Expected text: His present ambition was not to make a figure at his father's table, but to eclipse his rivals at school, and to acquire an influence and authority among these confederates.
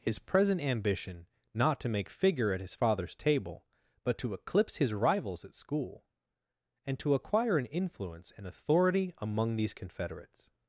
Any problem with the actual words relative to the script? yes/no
yes